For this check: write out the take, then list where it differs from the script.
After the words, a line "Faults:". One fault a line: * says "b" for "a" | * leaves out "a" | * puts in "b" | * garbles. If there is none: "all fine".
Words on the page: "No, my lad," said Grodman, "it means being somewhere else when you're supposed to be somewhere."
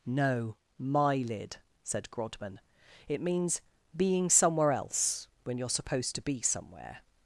"No, my lid," said Grodman, "it means being somewhere else when you're supposed to be somewhere."
Faults:
* says "lid" for "lad"